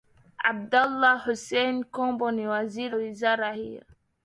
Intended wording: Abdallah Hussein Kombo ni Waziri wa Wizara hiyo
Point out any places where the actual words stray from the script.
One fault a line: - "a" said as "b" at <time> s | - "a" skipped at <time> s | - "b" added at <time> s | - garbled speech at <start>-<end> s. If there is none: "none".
- "wa" skipped at 3.0 s